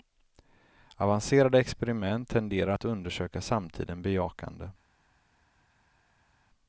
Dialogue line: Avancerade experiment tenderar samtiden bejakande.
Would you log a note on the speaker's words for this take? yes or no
yes